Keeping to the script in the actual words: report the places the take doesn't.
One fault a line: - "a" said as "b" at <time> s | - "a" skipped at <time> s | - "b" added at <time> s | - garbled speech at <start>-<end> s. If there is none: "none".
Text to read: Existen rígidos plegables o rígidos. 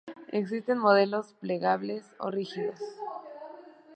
- "rígidos" said as "modelos" at 0.8 s